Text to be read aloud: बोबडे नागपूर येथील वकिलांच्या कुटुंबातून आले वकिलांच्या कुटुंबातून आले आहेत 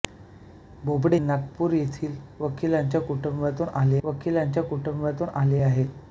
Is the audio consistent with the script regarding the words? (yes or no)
yes